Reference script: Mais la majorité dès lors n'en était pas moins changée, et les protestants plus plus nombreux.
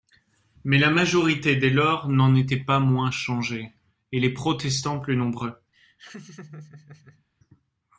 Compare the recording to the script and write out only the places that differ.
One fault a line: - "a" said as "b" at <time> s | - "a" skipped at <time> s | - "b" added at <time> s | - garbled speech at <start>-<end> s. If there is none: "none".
- "plus" skipped at 5.2 s